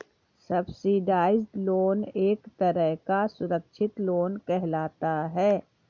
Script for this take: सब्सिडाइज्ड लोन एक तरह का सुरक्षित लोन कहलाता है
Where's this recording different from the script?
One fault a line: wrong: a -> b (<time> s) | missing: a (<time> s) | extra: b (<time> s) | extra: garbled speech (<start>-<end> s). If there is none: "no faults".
no faults